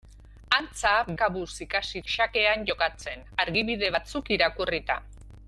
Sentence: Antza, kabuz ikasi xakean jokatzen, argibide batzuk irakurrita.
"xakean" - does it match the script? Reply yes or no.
yes